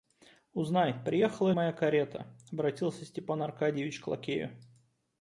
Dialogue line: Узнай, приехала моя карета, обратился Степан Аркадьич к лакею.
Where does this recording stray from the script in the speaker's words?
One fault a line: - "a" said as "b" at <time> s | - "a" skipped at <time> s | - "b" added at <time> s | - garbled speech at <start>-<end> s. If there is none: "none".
none